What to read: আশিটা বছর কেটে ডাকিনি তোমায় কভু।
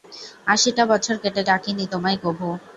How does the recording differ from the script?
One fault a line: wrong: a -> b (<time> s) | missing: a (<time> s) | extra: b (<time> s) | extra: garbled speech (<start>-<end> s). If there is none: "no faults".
no faults